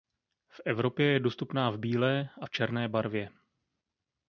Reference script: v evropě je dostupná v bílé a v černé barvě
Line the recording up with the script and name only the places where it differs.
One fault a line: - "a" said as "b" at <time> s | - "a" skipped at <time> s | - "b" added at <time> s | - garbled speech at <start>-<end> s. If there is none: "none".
none